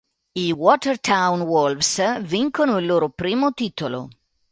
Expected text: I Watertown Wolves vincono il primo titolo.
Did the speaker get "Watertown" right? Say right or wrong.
right